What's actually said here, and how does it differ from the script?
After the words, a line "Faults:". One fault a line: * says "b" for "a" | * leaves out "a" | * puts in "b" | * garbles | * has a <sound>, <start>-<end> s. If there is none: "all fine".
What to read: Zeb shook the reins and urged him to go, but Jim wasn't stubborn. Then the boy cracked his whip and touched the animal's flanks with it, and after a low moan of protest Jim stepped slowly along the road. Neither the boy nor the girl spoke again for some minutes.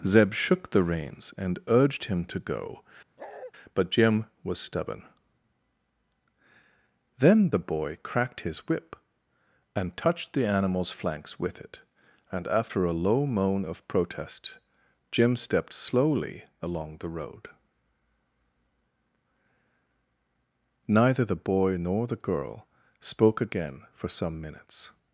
Zeb shook the reins and urged him to go, but Jim was stubborn. Then the boy cracked his whip and touched the animal's flanks with it, and after a low moan of protest Jim stepped slowly along the road. Neither the boy nor the girl spoke again for some minutes.
Faults:
* has a bark, 3.2-3.5 s
* says "was" for "wasn't"